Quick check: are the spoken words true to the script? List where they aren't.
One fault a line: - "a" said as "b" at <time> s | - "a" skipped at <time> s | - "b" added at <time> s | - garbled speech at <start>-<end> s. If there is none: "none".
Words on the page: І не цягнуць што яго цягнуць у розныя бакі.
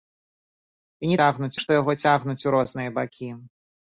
none